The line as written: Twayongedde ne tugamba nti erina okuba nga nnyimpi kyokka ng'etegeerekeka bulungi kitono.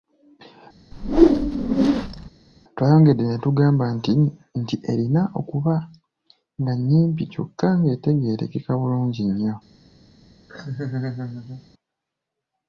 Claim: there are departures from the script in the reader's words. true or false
true